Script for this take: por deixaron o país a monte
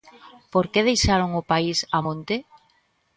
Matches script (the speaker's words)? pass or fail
fail